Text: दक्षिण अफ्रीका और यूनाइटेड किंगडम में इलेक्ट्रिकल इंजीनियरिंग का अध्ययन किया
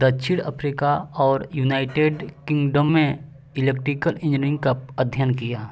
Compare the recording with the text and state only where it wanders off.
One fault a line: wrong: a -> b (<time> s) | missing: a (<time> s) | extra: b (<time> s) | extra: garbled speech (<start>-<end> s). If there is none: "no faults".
no faults